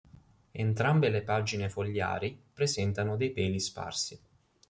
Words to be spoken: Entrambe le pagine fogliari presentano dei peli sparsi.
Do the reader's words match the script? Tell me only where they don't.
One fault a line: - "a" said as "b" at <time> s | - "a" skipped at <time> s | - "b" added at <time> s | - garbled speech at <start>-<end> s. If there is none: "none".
none